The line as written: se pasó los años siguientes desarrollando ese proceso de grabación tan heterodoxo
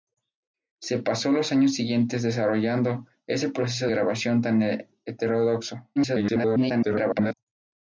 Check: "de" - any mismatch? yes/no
yes